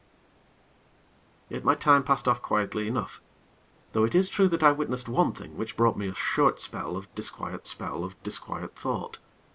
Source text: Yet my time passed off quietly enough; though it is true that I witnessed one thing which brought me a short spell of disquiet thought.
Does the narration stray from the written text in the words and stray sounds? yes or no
yes